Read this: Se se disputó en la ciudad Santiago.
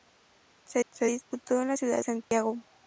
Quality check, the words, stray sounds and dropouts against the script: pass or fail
fail